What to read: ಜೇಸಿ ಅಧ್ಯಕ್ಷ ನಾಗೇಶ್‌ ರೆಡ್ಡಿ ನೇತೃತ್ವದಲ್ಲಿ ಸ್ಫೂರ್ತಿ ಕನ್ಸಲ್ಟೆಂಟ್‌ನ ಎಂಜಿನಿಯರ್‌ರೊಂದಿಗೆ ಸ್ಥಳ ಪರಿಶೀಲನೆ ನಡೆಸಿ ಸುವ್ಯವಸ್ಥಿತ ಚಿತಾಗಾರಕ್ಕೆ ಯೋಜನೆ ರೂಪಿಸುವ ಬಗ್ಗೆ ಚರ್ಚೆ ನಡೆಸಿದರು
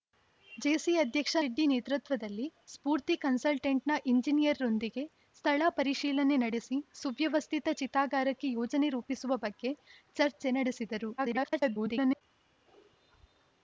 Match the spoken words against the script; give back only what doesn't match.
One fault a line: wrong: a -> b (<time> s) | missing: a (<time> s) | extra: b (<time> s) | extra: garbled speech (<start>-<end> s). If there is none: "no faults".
missing: ನಾಗೇಶ್ (1.4 s)
extra: garbled speech (11.2-12.2 s)